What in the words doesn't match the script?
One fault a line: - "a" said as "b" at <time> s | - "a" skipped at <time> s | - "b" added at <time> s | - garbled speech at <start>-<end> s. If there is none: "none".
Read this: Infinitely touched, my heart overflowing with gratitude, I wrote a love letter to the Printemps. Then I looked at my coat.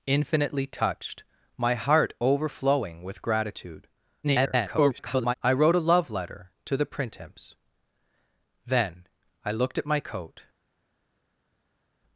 - garbled speech at 4.2-5.3 s